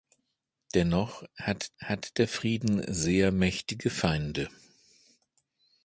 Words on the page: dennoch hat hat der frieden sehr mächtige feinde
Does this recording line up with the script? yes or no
yes